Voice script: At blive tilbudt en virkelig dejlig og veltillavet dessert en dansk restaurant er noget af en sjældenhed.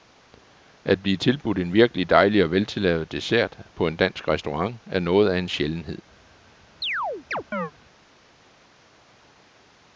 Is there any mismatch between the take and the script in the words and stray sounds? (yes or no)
yes